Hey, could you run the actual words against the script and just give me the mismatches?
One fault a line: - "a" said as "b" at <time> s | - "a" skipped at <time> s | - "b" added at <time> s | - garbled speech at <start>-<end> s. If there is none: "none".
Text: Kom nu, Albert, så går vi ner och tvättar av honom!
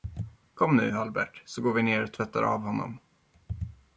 none